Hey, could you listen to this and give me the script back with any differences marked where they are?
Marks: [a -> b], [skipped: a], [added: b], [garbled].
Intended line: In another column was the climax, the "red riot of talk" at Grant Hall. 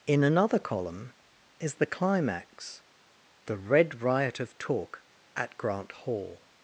In another column [was -> is] the climax, the "red riot of talk" at Grant Hall.